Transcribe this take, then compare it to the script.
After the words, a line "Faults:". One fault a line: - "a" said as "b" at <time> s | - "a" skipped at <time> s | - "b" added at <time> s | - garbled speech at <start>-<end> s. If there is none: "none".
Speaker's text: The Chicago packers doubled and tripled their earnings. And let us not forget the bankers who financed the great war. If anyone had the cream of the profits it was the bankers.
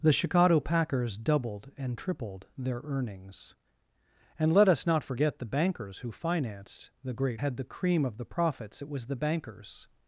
The Chicago packers doubled and tripled their earnings. And let us not forget the bankers who financed the great had the cream of the profits it was the bankers.
Faults:
- "war If anyone" skipped at 7.4 s